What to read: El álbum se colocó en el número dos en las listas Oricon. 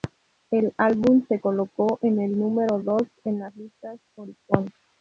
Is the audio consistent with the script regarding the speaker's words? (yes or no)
yes